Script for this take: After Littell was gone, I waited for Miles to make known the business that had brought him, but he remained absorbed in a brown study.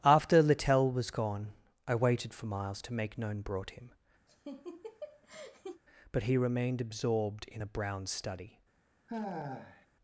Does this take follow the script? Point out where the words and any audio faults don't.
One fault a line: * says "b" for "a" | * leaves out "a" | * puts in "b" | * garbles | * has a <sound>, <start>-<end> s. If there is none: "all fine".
* leaves out "the business that had"
* has a laugh, 4.3-5.8 s
* has a sigh, 9.1-9.9 s